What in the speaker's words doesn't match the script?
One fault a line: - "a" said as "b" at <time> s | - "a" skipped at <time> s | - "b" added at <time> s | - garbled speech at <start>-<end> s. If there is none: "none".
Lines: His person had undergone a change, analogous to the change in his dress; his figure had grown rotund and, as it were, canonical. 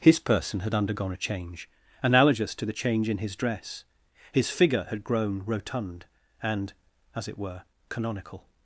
none